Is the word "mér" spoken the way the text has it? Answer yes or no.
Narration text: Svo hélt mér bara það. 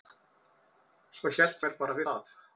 yes